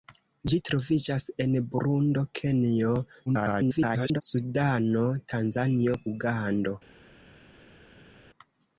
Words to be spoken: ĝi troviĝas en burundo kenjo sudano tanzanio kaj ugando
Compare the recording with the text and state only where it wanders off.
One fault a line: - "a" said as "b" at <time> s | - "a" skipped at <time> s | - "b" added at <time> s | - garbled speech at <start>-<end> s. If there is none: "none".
- garbled speech at 3.3-4.2 s
- "kaj" skipped at 6.0 s